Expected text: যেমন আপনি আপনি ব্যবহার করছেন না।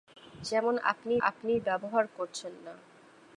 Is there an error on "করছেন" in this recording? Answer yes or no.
no